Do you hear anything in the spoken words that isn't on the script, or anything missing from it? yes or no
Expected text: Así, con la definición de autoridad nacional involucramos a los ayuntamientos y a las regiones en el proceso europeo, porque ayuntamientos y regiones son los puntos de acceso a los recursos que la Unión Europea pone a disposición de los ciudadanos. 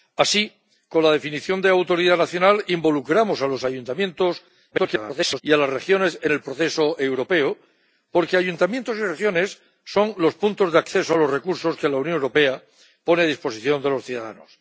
yes